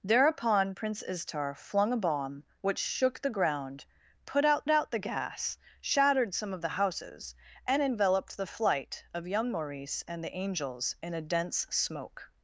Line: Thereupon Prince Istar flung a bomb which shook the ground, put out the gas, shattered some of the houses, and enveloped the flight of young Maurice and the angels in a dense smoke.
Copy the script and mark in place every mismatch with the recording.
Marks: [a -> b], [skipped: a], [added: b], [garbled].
Thereupon Prince Istar flung a bomb which shook the ground, put out [added: out] the gas, shattered some of the houses, and enveloped the flight of young Maurice and the angels in a dense smoke.